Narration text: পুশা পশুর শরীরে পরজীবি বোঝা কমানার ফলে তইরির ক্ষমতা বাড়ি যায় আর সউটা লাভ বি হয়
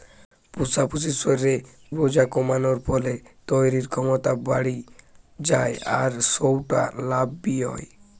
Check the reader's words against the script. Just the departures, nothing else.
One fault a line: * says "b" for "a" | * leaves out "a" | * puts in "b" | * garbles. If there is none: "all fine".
* leaves out "পরজীবি"